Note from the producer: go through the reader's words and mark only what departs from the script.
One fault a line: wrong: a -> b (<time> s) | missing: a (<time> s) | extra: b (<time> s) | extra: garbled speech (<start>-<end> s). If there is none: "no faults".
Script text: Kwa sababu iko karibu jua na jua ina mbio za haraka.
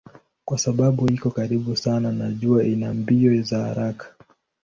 wrong: jua -> sana (1.8 s)